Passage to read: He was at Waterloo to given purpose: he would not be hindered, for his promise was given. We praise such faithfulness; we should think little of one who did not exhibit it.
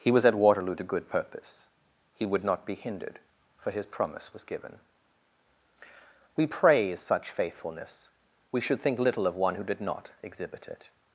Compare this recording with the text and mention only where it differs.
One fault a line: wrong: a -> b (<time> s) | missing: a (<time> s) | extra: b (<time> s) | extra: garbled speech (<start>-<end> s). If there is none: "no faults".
wrong: given -> good (0.8 s)